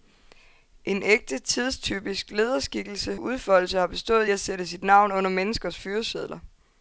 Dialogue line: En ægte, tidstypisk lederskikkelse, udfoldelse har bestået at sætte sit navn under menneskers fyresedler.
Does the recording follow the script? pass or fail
pass